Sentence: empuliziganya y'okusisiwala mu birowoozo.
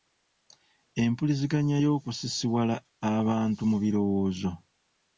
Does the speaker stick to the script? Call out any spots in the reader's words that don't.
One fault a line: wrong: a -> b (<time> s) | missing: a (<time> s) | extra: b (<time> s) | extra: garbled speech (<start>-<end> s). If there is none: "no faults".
extra: abantu (3.2 s)